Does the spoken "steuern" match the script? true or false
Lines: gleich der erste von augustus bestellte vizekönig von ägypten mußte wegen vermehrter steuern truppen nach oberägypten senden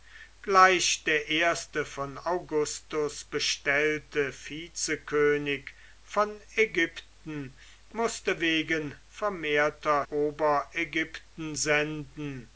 false